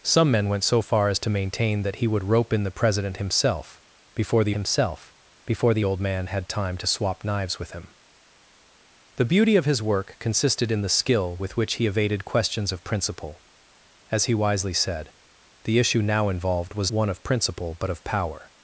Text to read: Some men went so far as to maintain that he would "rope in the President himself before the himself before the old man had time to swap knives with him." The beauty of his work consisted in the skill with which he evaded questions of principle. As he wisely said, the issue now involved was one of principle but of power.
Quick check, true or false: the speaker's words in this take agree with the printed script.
true